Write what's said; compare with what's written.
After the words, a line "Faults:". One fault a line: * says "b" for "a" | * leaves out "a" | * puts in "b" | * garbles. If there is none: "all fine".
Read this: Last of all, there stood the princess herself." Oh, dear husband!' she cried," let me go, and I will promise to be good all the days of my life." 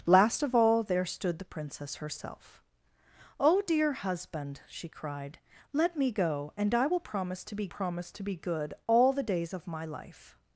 Last of all, there stood the princess herself." Oh, dear husband!' she cried," let me go, and I will promise to be promise to be good all the days of my life."
Faults:
* puts in "promise to be"